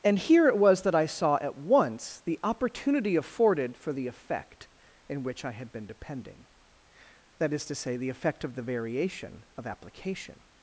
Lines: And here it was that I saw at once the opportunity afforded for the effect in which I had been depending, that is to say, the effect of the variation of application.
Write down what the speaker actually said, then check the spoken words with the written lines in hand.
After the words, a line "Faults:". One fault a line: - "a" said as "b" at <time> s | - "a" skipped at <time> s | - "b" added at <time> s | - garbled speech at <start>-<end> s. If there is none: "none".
And here it was that I saw at once the opportunity afforded for the effect in which I had been depending, that is to say, the effect of the variation of application.
Faults:
none